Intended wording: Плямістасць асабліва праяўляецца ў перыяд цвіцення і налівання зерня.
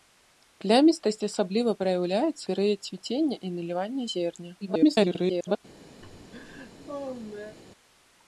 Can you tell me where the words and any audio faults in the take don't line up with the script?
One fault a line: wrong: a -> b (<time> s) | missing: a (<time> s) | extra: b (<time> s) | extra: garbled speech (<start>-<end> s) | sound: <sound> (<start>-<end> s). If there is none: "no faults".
missing: ў (2.4 s)
extra: garbled speech (4.6-5.6 s)
sound: laugh (6.0-7.6 s)